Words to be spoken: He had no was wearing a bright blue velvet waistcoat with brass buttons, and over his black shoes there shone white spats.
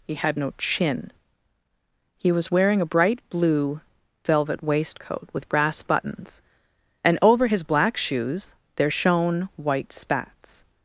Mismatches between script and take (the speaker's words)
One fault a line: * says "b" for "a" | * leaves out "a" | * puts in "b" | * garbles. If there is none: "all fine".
* puts in "chin He"